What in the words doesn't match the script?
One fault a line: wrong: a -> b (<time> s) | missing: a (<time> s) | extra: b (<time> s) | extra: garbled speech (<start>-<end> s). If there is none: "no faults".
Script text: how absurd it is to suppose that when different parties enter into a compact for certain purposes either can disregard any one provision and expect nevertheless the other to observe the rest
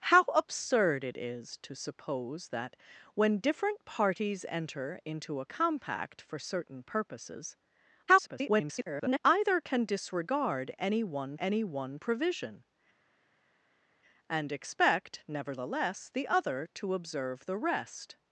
extra: garbled speech (8.1-9.2 s)
extra: any one (11.4 s)